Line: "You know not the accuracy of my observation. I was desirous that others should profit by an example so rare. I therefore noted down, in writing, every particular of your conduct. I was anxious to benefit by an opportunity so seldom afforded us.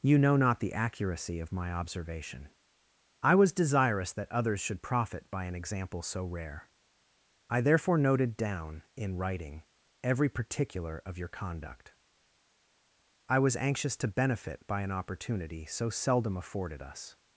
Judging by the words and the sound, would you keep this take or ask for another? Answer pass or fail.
pass